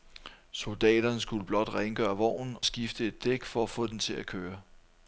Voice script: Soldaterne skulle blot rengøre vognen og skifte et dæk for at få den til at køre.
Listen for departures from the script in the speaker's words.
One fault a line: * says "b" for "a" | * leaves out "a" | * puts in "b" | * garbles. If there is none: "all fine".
* leaves out "og"